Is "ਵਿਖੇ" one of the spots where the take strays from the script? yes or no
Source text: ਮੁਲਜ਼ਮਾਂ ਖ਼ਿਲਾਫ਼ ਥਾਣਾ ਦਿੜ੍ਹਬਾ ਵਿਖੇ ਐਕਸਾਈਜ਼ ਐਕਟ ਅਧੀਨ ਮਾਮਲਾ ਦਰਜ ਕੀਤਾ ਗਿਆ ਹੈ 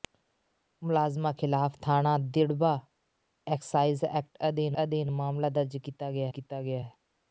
yes